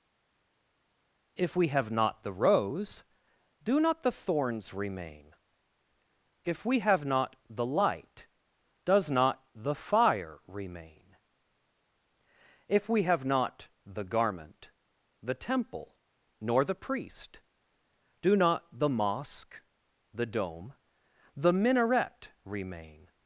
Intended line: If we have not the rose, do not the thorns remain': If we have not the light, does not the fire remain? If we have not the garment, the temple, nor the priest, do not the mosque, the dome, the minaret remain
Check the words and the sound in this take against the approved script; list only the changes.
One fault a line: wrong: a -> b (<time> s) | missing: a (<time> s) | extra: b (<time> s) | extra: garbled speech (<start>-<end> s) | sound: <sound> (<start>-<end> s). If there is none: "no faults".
no faults